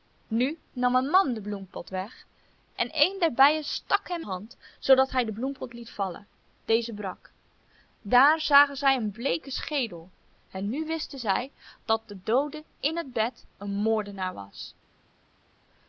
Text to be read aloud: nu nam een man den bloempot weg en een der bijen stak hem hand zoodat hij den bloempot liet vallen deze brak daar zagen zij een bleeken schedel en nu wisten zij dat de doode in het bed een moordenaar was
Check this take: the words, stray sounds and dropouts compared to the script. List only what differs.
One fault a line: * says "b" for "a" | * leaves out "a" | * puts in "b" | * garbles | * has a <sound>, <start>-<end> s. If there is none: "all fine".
all fine